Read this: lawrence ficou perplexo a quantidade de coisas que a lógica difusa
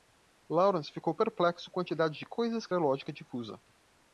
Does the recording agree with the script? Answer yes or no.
yes